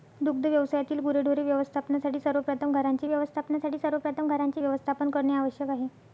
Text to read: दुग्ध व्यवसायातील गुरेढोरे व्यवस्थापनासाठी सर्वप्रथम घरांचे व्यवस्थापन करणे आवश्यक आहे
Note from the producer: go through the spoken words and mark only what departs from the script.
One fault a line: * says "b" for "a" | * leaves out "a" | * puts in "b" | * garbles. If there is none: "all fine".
* puts in "व्यवस्थापनासाठी सर्वप्रथम घरांचे"